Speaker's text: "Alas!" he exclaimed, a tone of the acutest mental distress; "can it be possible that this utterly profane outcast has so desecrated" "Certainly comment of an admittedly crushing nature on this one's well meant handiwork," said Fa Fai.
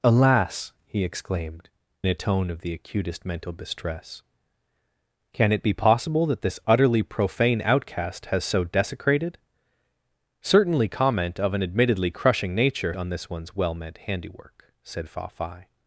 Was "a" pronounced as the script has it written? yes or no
yes